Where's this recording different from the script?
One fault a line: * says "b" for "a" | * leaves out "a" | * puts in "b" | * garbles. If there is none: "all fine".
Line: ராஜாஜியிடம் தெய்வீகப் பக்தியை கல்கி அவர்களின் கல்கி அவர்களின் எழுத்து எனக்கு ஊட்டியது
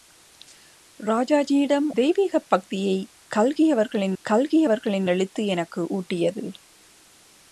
all fine